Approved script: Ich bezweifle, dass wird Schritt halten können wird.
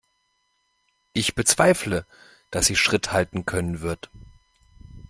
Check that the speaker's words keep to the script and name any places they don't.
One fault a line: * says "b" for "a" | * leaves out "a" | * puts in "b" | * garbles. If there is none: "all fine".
* says "sie" for "wird"